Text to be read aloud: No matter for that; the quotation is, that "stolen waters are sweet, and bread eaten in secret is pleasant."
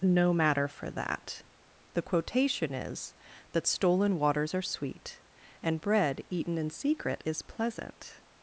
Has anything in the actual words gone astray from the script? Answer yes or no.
no